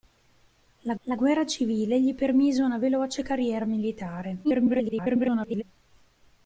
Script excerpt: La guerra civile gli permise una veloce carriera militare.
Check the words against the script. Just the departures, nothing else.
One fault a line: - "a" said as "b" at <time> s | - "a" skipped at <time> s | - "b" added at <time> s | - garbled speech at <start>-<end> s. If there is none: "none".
- "la" added at 1.0 s
- garbled speech at 4.4-5.6 s